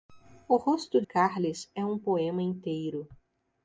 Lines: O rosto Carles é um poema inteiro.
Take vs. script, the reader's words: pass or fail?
pass